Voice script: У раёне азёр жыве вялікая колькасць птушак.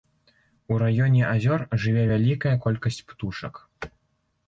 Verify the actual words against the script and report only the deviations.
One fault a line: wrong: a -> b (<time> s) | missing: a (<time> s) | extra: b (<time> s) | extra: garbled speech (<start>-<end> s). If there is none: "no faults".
no faults